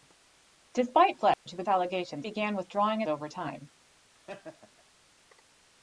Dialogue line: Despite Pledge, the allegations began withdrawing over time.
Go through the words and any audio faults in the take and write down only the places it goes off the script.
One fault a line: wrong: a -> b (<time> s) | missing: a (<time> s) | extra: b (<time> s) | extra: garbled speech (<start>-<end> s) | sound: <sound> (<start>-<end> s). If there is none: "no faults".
sound: dropout (1.3-1.5 s)
sound: laugh (4.1-4.8 s)